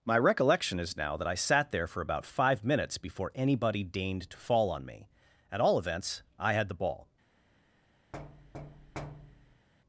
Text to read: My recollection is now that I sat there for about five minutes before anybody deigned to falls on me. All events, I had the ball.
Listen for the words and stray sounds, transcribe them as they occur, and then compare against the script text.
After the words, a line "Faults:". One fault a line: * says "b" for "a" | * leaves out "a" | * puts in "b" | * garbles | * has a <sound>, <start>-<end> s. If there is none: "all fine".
My recollection is now that I sat there for about five minutes before anybody deigned to fall on me. At all events, I had the ball.
Faults:
* says "fall" for "falls"
* puts in "At"
* has a thud, 8.1-9.7 s